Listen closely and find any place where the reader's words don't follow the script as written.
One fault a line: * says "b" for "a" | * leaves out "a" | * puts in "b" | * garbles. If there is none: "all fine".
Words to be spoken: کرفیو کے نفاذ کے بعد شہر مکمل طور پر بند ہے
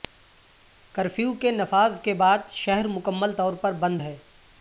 all fine